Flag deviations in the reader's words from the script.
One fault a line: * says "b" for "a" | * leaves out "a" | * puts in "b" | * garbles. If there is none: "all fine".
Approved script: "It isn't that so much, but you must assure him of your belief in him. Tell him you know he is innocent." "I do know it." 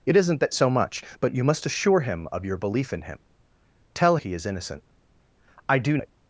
* leaves out "him you know"
* leaves out "know"